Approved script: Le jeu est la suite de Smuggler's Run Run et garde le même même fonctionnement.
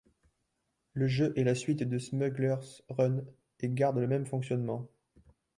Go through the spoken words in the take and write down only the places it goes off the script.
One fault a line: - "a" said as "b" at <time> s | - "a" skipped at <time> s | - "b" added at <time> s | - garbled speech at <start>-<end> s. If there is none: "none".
- "Run" skipped at 3.2 s
- "même" skipped at 4.2 s